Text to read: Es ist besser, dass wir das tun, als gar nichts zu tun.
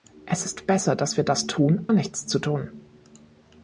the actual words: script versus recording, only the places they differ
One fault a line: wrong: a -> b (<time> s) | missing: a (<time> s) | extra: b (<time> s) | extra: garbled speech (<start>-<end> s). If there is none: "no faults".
missing: als gar (1.8 s)